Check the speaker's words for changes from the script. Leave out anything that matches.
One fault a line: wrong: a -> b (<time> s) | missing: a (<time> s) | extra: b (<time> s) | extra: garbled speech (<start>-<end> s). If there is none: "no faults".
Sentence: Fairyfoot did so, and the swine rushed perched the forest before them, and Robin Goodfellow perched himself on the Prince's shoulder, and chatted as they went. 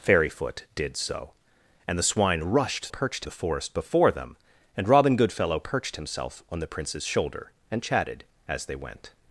no faults